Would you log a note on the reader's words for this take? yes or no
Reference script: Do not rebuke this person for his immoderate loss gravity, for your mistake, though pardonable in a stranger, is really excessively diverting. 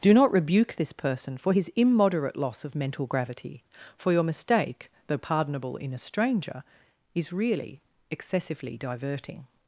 yes